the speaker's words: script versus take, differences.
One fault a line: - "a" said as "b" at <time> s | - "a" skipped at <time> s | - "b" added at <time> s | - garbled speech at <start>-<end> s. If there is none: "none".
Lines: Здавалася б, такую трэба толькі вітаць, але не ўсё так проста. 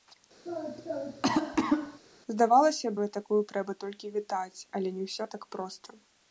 none